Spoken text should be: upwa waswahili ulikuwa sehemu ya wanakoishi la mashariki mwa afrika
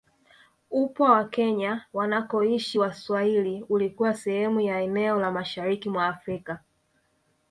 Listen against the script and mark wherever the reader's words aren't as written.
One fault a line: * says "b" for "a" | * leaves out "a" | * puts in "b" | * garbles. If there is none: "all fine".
* puts in "wa kenya wanakoishi"
* says "eneo" for "wanakoishi"